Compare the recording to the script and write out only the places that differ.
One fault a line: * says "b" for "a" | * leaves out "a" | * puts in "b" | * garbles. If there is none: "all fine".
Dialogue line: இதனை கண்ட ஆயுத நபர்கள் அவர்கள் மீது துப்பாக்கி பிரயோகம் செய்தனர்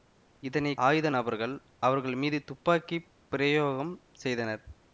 * leaves out "கண்ட"